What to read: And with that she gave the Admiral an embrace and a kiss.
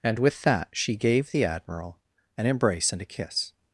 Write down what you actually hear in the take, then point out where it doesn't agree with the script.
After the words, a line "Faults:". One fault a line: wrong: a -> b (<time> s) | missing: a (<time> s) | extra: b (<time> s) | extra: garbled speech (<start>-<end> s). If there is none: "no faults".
And with that she gave the Admiral an embrace and a kiss.
Faults:
no faults